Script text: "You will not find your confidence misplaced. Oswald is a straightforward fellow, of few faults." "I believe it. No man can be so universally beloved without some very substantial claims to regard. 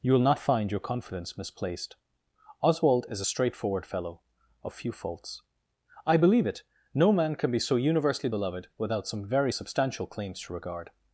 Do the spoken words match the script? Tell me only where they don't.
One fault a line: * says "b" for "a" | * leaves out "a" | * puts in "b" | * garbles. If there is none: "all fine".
all fine